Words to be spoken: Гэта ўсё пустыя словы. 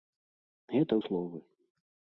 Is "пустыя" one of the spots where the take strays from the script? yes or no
yes